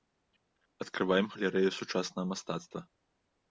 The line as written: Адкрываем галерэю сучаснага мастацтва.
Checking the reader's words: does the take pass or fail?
pass